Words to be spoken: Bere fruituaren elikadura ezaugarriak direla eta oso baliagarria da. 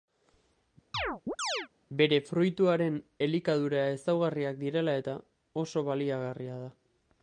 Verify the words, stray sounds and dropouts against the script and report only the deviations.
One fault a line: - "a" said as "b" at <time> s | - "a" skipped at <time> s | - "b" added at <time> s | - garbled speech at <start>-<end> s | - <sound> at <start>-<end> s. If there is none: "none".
- chirp at 0.9-1.7 s